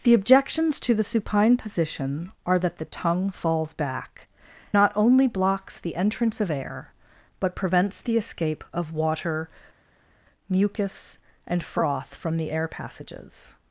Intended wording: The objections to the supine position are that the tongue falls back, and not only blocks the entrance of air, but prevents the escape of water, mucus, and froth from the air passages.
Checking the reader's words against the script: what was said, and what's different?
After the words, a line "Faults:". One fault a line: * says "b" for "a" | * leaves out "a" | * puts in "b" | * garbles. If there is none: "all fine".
The objections to the supine position are that the tongue falls back, not only blocks the entrance of air, but prevents the escape of water, mucus, and froth from the air passages.
Faults:
* leaves out "and"